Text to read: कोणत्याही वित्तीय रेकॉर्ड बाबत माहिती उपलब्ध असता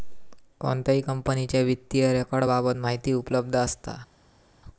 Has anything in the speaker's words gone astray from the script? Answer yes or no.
yes